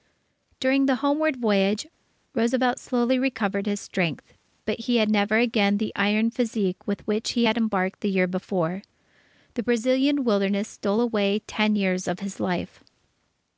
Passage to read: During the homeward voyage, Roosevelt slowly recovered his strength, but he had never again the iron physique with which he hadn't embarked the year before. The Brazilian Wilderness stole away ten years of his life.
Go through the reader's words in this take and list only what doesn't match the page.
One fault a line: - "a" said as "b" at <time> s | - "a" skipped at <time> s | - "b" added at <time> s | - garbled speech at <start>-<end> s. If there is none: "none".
- "hadn't" said as "had" at 7.4 s